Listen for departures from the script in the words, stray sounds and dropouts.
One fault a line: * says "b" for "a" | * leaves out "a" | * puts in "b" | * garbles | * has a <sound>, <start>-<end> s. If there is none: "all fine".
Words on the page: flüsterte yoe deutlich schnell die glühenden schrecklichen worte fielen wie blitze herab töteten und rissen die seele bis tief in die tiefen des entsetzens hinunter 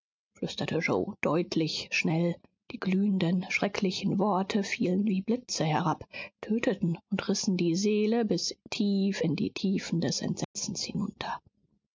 * has a dropout, 10.4-10.5 s